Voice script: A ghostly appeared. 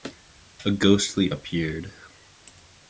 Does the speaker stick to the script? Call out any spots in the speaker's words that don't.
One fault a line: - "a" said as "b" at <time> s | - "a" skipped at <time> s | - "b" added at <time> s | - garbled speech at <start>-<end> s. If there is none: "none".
none